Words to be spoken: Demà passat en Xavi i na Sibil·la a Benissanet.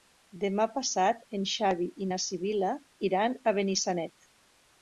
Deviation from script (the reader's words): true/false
true